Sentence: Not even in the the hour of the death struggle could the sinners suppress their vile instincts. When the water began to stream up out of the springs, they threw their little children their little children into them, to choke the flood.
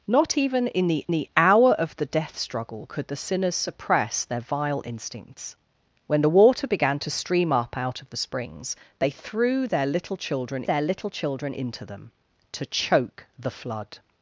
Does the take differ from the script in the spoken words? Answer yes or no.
no